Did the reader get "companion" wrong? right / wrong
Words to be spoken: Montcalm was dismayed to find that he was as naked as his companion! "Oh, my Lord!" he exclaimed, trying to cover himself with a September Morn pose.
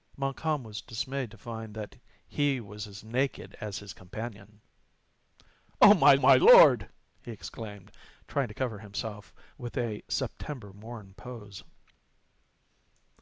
right